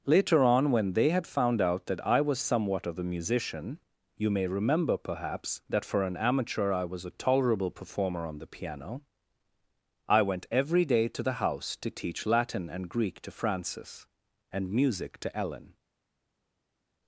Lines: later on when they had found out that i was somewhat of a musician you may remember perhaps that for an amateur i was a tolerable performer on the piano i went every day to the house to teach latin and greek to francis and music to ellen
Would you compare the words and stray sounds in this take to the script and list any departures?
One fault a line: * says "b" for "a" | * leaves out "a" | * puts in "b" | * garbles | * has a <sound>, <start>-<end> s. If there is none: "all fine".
all fine